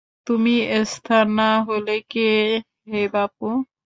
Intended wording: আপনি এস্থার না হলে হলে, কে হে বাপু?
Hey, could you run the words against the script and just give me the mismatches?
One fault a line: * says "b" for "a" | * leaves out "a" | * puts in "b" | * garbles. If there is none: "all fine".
* says "তুমি" for "আপনি"
* leaves out "হলে"